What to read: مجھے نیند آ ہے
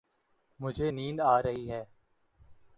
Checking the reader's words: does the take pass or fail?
fail